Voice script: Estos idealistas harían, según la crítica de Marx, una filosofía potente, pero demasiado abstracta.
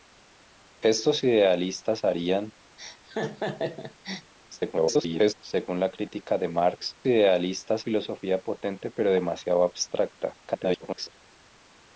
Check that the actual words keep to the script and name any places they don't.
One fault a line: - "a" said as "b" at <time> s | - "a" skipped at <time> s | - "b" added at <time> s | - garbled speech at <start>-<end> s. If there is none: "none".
- garbled speech at 4.5-5.3 s
- "una" said as "idealistas" at 7.1 s
- garbled speech at 10.4-11.1 s